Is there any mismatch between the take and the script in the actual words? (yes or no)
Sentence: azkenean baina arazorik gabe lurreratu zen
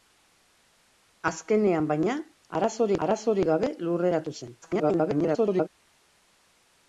yes